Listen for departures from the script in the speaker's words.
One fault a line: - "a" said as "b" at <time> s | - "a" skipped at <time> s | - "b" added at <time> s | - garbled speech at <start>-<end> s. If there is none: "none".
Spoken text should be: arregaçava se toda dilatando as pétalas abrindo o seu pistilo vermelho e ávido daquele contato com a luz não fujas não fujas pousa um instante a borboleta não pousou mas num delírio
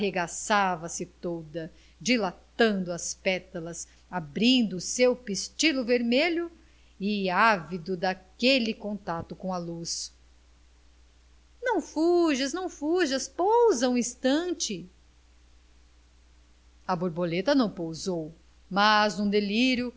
none